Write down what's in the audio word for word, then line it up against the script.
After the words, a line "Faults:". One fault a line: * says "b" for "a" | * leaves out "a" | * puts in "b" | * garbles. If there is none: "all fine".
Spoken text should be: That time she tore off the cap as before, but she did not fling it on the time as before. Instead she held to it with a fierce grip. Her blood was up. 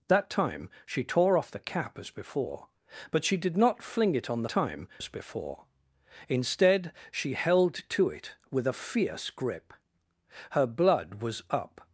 That time she tore off the cap as before, but she did not fling it on the time as before. Instead she held to it with a fierce grip. Her blood was up.
Faults:
all fine